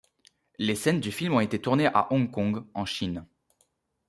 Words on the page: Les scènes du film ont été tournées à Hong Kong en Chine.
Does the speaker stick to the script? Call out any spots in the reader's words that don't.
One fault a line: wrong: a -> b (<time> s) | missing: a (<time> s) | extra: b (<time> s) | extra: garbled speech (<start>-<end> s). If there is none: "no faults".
no faults